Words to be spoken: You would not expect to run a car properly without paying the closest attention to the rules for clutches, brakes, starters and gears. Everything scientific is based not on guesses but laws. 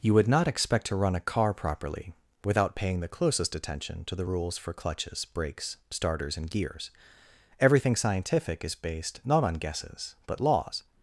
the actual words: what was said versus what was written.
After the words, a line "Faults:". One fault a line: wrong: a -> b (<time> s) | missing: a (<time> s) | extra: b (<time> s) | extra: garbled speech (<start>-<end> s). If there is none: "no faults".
You would not expect to run a car properly without paying the closest attention to the rules for clutches, brakes, starters and gears. Everything scientific is based not on guesses but laws.
Faults:
no faults